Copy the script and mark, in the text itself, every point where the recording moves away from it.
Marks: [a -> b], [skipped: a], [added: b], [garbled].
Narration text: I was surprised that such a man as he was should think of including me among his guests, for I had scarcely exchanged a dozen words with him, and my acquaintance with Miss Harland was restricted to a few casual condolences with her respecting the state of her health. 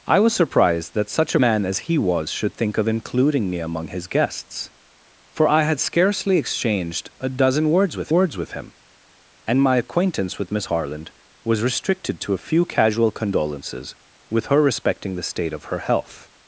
I was surprised that such a man as he was should think of including me among his guests, for I had scarcely exchanged a dozen words with [added: words with] him, and my acquaintance with Miss Harland was restricted to a few casual condolences with her respecting the state of her health.